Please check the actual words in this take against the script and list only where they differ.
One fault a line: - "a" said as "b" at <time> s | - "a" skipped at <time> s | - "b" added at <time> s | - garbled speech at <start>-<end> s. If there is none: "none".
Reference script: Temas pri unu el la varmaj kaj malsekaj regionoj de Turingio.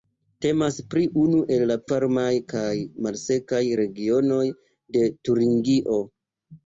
none